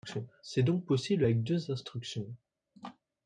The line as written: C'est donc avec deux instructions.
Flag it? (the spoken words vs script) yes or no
yes